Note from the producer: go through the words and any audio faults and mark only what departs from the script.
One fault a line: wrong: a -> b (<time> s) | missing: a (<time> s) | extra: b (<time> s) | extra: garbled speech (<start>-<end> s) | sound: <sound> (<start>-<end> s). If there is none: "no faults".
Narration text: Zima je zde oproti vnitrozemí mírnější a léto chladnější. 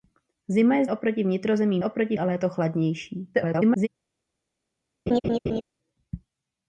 missing: zde (0.8 s)
wrong: mírnější -> oproti (1.8 s)
extra: garbled speech (3.3-3.9 s)
sound: laugh (5.1-5.6 s)